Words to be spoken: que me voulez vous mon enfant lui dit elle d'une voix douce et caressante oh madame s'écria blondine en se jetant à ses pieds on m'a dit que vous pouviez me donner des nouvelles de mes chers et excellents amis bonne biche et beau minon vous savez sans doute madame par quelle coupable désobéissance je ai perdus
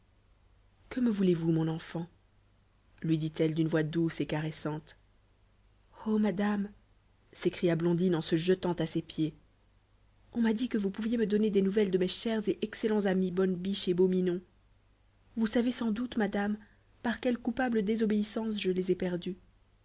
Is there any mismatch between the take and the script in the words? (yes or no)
yes